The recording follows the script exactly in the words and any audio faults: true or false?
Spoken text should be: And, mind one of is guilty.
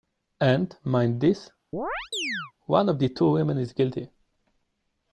false